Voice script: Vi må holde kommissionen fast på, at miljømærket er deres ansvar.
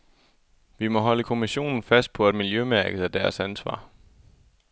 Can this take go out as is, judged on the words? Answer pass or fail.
pass